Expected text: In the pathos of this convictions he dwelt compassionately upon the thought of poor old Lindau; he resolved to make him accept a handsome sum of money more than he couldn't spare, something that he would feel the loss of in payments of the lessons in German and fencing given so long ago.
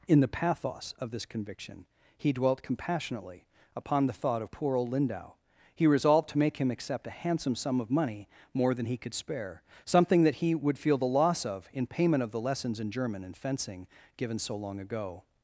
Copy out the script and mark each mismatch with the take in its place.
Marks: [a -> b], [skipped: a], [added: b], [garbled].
In the pathos of this [convictions -> conviction] he dwelt compassionately upon the thought of poor old Lindau; he resolved to make him accept a handsome sum of money more than he [couldn't -> could] spare, something that he would feel the loss of in [payments -> payment] of the lessons in German and fencing given so long ago.